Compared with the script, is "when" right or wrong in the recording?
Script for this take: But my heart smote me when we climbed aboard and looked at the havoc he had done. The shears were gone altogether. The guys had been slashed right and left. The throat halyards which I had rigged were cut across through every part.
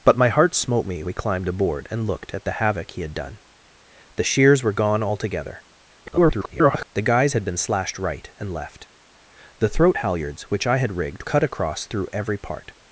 wrong